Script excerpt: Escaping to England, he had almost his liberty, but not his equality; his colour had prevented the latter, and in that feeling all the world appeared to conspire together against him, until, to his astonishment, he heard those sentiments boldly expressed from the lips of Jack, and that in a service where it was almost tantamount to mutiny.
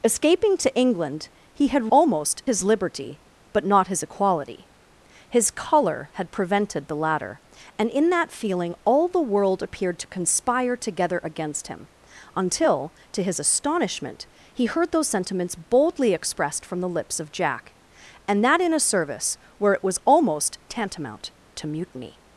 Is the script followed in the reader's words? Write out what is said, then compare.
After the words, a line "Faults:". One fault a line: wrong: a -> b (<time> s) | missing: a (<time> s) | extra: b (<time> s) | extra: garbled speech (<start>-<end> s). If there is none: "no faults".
Escaping to England, he had almost his liberty, but not his equality; his colour had prevented the latter, and in that feeling all the world appeared to conspire together against him, until, to his astonishment, he heard those sentiments boldly expressed from the lips of Jack, and that in a service where it was almost tantamount to mutiny.
Faults:
no faults